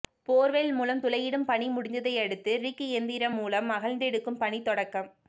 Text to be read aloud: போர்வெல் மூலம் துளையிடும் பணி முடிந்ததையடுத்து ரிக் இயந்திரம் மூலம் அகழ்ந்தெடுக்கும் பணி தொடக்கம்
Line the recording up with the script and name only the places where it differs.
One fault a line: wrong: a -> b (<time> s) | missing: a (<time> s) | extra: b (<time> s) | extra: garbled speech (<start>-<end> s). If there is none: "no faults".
no faults